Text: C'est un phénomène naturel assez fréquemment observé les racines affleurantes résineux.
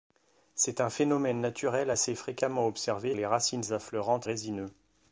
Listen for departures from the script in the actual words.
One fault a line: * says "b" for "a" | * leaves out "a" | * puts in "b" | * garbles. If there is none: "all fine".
all fine